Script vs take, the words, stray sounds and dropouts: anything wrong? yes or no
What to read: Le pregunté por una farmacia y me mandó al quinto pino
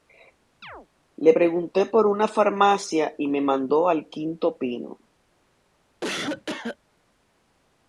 yes